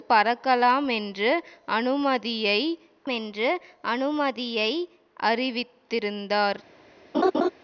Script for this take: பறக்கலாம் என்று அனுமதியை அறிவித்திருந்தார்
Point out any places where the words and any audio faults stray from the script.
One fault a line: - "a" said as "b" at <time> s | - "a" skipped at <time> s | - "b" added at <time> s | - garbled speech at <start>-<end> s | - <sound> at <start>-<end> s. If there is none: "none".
- "என்று அனுமதியை" added at 3.1 s
- laugh at 7.1-7.5 s